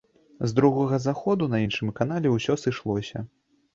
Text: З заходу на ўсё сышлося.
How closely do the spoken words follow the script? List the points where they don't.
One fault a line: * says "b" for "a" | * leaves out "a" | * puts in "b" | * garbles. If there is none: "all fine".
* puts in "другога"
* puts in "іншым канале"